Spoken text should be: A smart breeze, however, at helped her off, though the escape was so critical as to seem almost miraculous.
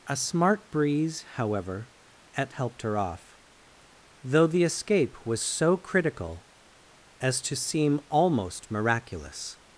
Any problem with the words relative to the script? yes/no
no